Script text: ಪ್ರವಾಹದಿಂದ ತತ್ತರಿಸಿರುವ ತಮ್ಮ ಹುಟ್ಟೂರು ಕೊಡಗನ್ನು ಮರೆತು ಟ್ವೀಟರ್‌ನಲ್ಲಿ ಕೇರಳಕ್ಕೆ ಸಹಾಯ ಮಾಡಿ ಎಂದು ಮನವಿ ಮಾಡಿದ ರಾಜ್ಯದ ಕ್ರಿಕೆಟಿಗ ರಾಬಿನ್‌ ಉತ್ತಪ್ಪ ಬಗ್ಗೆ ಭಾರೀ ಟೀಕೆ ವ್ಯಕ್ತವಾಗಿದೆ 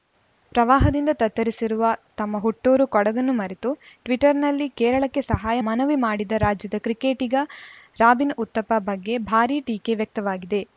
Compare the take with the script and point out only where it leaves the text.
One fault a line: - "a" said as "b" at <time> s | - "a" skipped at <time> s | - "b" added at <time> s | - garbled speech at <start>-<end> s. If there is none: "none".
- "ಮಾಡಿ ಎಂದು" skipped at 5.6 s